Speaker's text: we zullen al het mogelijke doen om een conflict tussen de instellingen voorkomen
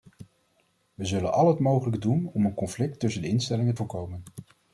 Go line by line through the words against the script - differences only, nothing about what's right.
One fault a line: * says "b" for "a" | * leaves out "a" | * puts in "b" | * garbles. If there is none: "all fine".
all fine